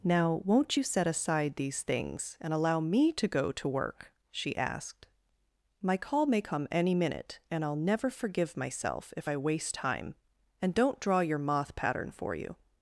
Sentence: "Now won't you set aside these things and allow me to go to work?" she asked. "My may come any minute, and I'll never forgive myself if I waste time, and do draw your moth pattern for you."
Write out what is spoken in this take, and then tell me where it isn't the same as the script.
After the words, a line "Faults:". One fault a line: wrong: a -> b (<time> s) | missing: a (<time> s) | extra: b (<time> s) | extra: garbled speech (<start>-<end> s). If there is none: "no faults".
"Now won't you set aside these things and allow me to go to work?" she asked. "My call may come any minute, and I'll never forgive myself if I waste time, and don't draw your moth pattern for you."
Faults:
extra: call (6.0 s)
wrong: do -> don't (10.7 s)